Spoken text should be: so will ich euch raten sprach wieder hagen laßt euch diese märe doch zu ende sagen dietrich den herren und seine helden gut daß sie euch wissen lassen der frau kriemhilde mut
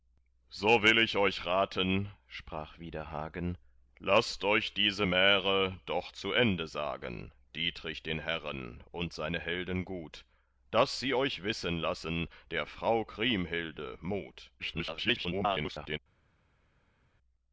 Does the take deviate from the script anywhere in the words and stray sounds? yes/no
yes